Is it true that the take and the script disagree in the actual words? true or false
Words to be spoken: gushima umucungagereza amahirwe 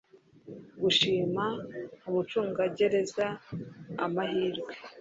false